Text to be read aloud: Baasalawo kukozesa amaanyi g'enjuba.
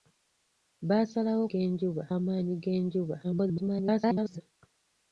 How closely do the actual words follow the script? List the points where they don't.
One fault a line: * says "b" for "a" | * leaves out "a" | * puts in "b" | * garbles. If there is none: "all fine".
* says "g'enjuba" for "kukozesa"
* garbles